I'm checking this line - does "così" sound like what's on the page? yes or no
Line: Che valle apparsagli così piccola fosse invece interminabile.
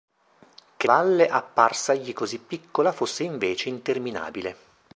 yes